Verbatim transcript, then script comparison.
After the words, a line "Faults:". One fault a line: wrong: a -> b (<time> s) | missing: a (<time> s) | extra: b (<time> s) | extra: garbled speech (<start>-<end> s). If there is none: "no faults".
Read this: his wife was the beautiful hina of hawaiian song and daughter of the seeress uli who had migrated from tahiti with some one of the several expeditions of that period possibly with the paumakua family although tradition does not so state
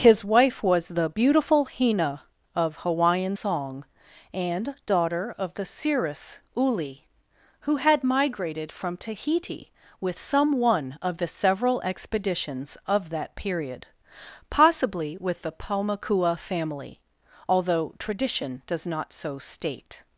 his wife was the beautiful hina of hawaiian song and daughter of the seeress uli who had migrated from tahiti with some one of the several expeditions of that period possibly with the paumakua family although tradition does not so state
Faults:
no faults